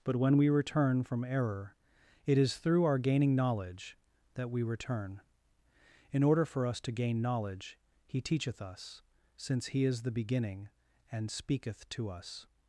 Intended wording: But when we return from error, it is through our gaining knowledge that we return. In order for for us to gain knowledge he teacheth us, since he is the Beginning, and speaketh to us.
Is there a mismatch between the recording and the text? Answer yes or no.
yes